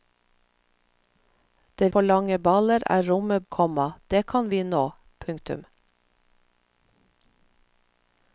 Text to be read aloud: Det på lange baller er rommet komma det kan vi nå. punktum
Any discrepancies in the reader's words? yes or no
no